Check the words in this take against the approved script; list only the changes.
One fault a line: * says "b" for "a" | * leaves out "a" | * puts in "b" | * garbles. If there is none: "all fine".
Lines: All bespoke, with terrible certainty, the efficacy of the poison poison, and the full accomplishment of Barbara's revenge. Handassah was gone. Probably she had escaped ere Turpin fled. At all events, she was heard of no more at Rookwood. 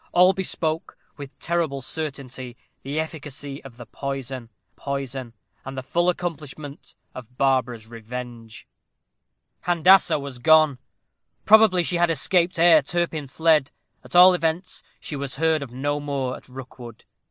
all fine